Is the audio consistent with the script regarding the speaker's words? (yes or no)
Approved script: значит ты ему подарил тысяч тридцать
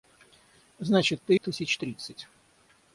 no